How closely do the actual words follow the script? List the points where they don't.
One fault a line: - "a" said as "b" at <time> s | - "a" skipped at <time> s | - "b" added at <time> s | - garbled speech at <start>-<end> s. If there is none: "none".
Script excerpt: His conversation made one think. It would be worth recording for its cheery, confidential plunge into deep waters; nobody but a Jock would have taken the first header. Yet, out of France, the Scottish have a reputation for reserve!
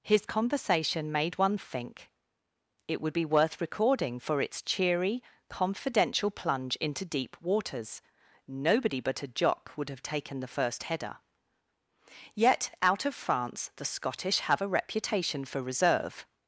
none